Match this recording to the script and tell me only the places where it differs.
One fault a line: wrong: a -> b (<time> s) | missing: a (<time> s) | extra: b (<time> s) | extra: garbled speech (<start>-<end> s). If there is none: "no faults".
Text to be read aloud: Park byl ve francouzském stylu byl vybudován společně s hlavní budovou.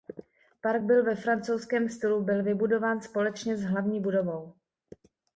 no faults